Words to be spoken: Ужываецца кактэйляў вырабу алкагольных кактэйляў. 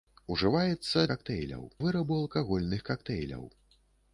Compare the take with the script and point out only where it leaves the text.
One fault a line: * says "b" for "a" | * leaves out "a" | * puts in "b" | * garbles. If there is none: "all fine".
all fine